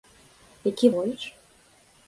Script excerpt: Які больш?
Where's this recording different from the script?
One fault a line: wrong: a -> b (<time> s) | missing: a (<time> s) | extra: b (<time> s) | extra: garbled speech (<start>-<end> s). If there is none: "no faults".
no faults